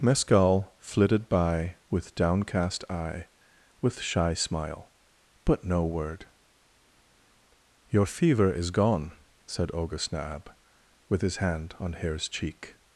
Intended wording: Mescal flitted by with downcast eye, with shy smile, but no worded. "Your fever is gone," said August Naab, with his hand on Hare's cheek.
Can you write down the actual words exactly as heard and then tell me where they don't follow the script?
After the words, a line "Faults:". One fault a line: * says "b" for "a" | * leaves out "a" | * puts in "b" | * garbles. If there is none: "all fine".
Mescal flitted by with downcast eye, with shy smile, but no word. "Your fever is gone," said August Naab, with his hand on Hare's cheek.
Faults:
* says "word" for "worded"